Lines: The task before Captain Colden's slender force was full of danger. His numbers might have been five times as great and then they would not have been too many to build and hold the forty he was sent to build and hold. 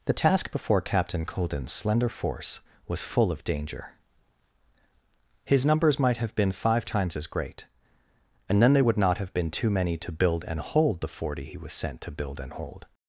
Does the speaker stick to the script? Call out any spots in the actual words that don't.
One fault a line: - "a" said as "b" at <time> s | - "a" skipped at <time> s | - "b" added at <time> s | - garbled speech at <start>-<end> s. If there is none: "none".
none